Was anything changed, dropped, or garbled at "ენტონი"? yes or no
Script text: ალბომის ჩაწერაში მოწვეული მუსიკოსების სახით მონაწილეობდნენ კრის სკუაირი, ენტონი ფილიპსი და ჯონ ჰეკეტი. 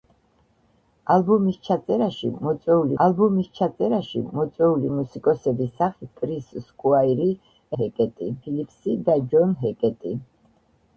yes